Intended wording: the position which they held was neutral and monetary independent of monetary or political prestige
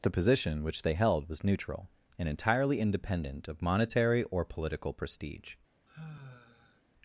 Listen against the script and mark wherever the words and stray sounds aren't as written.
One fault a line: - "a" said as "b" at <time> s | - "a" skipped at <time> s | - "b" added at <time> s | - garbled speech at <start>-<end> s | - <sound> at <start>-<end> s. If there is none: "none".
- "monetary" said as "entirely" at 2.3 s
- sigh at 5.9-6.8 s